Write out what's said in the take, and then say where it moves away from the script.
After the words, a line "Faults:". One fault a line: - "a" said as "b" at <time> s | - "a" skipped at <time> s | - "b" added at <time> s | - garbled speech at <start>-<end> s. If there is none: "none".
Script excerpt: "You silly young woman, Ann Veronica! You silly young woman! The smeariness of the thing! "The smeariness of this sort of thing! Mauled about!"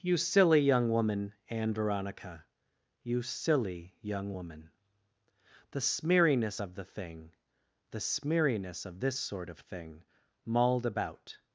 "You silly young woman, Ann Veronica! You silly young woman! The smeariness of the thing! "The smeariness of this sort of thing! Mauled about!"
Faults:
none